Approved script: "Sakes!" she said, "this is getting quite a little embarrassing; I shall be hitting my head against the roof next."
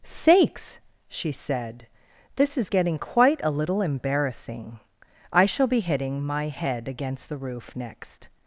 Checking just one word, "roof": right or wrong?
right